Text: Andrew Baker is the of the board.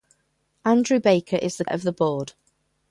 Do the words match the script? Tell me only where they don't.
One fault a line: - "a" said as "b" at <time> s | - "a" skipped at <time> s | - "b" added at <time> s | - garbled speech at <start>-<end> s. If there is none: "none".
none